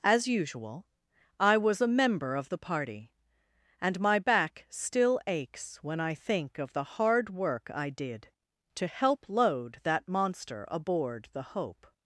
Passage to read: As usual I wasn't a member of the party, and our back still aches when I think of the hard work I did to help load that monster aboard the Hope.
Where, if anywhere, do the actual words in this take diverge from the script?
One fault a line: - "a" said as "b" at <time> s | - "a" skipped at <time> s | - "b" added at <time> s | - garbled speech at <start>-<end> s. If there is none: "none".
- "wasn't" said as "was" at 1.6 s
- "our" said as "my" at 4.0 s